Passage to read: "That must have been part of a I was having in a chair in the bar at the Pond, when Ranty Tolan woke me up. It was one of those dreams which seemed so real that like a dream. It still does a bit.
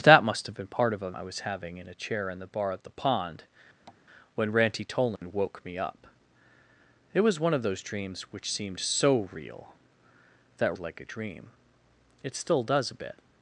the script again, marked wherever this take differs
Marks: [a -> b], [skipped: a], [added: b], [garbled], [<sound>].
"That must have been part of a I was having in a chair in the bar at the Pond, [tap] when Ranty Tolan [dropout] woke me up. It was one of those dreams which seemed so real that like a dream. It still does a bit.